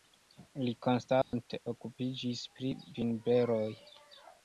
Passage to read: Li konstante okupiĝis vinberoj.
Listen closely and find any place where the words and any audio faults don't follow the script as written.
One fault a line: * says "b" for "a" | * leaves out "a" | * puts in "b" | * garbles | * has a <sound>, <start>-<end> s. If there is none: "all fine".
* has a dropout, 1.2-1.3 s
* puts in "pri"